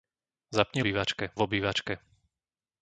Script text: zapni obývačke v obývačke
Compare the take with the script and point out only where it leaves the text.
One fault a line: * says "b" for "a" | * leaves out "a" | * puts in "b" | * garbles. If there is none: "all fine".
all fine